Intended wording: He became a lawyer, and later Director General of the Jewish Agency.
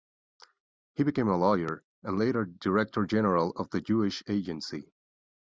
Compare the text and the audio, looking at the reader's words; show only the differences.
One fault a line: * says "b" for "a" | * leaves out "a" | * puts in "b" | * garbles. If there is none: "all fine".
all fine